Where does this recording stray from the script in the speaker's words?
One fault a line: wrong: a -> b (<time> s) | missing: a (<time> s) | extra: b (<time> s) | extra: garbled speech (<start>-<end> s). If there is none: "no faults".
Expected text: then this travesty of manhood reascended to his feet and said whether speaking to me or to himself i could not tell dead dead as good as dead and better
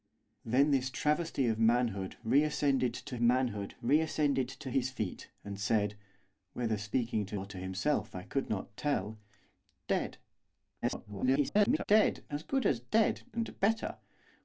extra: manhood reascended to (3.2 s)
missing: me (7.4 s)
extra: garbled speech (10.8-11.8 s)